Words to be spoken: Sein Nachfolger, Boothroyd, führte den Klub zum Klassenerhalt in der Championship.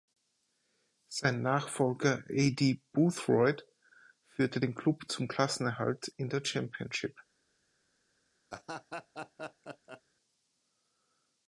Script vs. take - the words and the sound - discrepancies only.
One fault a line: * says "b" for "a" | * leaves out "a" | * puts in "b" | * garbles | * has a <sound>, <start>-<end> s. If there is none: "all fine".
* puts in "Aidy"
* has a laugh, 8.5-10.0 s